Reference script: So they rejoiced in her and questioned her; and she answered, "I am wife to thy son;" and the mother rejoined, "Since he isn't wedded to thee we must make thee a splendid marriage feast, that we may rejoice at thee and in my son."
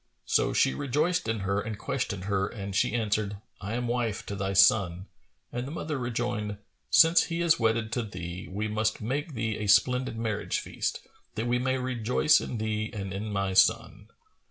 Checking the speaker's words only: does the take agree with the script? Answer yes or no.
no